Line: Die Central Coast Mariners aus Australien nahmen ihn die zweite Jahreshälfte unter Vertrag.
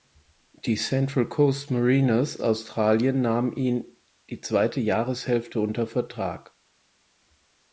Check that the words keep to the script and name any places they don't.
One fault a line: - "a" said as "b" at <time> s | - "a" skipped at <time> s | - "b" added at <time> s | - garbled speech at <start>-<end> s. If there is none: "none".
- "aus" skipped at 2.4 s